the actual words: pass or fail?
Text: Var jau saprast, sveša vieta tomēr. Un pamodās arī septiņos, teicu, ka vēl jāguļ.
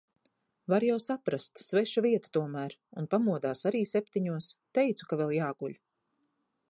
pass